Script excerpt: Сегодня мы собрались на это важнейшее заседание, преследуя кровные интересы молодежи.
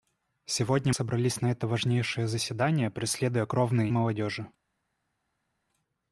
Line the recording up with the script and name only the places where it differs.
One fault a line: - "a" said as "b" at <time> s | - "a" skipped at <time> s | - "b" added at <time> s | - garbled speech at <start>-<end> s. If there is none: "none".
- "мы" skipped at 0.9 s
- "интересы" skipped at 3.9 s